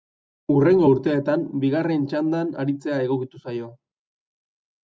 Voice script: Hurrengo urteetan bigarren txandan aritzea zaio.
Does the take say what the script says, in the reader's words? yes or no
no